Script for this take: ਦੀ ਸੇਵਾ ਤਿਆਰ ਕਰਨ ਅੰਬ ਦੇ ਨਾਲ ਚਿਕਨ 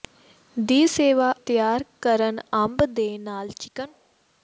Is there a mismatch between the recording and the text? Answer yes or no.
no